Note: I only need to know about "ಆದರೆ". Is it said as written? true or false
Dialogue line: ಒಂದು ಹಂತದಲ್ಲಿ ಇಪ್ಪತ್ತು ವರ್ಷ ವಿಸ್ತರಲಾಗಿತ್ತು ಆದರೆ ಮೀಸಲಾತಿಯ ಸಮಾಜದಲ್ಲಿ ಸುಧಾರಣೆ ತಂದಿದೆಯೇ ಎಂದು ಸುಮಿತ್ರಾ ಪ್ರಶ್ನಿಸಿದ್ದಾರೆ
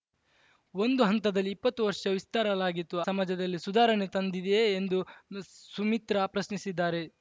false